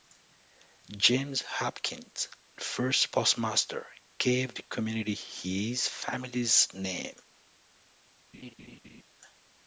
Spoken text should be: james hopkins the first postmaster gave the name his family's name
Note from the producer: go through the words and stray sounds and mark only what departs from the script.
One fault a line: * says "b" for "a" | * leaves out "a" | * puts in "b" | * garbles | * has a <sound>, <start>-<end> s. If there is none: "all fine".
* says "community" for "name"
* has a laugh, 8.3-9.0 s